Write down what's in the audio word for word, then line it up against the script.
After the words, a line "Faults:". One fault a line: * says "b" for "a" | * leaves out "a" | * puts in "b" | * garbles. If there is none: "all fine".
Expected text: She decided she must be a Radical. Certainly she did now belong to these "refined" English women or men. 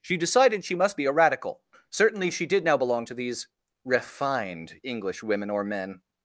She decided she must be a Radical. Certainly she did now belong to these "refined" English women or men.
Faults:
all fine